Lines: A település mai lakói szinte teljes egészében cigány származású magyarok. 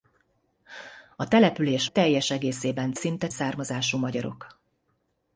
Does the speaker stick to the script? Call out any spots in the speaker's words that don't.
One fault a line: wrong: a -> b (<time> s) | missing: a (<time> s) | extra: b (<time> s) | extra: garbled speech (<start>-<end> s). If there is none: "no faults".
missing: mai lakói szinte (1.9 s)
wrong: cigány -> szinte (2.9 s)